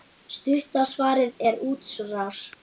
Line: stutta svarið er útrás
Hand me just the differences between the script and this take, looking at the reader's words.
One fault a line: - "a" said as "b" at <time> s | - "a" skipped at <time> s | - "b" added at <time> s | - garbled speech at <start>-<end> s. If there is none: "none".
none